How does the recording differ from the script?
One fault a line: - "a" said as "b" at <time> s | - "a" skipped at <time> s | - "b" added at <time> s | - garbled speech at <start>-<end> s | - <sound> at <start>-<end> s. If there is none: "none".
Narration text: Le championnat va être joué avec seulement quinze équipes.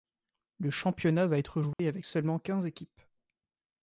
- dropout at 1.7-1.8 s